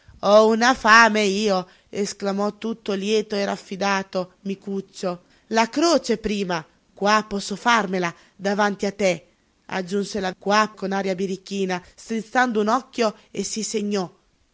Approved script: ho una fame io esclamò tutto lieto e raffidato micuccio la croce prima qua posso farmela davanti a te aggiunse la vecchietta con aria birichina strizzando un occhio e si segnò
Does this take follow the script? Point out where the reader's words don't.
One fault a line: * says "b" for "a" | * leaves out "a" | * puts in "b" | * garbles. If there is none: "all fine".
* says "qua" for "vecchietta"